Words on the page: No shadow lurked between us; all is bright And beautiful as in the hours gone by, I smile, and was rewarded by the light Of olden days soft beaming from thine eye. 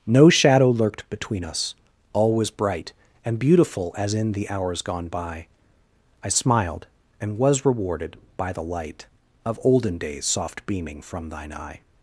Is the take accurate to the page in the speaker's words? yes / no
no